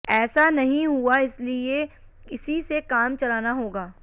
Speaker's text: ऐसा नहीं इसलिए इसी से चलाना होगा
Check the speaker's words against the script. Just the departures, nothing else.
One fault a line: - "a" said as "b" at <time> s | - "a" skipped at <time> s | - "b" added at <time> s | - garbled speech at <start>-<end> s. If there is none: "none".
- "हुआ" added at 0.9 s
- "काम" added at 2.8 s